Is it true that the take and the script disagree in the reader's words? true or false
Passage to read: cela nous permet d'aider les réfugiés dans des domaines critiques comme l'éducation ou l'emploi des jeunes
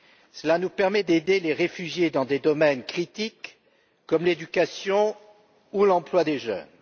false